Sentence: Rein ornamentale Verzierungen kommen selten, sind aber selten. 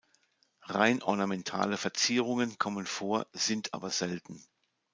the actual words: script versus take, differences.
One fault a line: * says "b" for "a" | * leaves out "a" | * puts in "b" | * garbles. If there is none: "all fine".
* says "vor" for "selten"